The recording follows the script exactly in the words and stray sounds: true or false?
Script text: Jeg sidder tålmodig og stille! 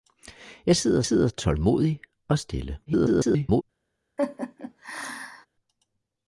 false